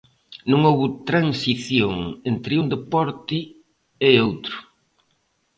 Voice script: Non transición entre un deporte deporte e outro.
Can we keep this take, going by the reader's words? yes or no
no